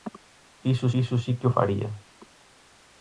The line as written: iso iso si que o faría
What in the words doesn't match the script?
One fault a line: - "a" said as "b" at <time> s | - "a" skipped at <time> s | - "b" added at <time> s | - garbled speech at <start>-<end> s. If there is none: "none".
none